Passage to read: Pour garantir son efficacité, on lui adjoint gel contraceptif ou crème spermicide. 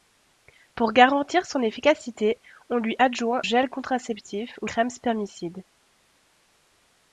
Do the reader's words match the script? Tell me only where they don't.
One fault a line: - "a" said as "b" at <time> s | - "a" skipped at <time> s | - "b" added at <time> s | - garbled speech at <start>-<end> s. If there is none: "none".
none